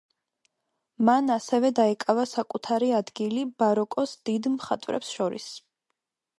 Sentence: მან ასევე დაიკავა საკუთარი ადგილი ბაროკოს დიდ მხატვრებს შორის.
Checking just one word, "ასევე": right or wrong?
right